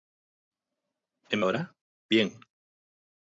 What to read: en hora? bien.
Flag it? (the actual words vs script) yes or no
no